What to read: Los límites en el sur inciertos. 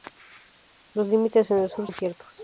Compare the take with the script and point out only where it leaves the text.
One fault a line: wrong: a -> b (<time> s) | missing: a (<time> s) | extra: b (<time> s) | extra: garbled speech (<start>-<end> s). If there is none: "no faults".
no faults